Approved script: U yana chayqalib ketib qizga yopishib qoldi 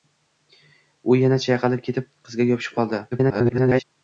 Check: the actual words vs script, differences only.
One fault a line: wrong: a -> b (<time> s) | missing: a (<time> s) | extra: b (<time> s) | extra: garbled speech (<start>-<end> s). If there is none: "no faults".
extra: garbled speech (3.1-3.8 s)